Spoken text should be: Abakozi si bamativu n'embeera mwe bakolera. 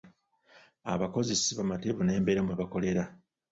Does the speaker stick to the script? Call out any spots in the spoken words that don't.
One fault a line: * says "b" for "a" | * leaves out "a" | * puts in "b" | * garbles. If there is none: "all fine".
all fine